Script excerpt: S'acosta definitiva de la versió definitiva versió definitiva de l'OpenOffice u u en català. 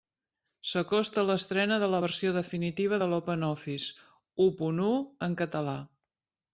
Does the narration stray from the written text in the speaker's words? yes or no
yes